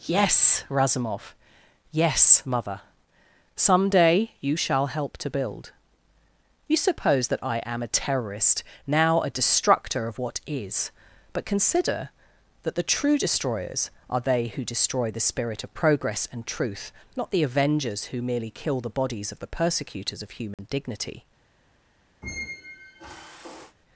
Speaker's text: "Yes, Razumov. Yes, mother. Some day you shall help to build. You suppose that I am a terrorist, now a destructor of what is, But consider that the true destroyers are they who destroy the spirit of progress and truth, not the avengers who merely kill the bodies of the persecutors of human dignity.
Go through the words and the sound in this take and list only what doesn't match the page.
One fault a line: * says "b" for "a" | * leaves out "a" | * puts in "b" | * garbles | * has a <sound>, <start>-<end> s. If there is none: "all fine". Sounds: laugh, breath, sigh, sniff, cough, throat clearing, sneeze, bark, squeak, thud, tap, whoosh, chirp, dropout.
* has a dropout, 20.5-20.6 s
* has a squeak, 22.2-23.8 s